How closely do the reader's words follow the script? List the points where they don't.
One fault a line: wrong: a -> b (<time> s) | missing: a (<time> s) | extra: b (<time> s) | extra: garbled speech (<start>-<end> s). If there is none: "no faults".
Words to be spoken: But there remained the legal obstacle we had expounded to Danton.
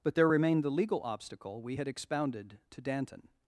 no faults